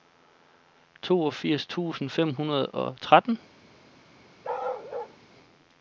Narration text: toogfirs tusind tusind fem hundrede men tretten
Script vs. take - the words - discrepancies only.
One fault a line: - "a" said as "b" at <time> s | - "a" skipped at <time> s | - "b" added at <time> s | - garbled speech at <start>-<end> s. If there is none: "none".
- "tusind" skipped at 2.1 s
- "men" said as "og" at 2.7 s